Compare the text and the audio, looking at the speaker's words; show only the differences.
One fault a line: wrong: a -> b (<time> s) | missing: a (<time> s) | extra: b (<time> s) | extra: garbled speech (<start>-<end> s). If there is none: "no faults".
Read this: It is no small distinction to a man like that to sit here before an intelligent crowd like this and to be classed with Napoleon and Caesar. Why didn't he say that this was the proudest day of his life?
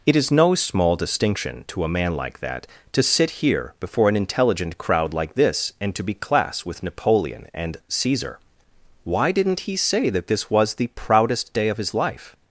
wrong: classed -> class (6.2 s)